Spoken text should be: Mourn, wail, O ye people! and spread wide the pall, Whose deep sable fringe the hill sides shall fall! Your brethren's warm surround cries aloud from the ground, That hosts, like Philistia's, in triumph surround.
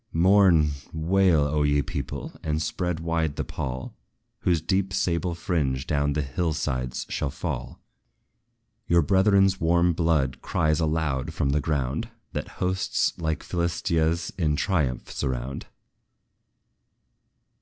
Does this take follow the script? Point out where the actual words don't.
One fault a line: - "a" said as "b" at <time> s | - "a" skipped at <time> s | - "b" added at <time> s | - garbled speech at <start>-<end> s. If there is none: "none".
- "down" added at 5.8 s
- "surround" said as "blood" at 9.9 s